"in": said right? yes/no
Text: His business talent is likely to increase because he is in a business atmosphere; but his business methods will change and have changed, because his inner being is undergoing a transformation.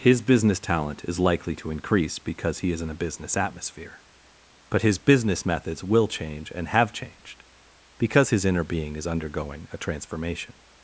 yes